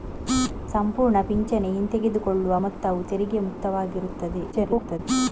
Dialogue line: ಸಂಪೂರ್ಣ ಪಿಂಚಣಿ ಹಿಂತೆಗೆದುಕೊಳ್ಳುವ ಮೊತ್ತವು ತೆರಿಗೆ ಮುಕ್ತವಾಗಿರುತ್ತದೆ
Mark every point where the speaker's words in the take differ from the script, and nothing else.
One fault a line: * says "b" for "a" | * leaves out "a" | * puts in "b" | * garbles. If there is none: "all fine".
* garbles